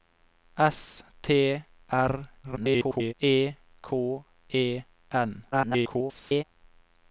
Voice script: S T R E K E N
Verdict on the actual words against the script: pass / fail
fail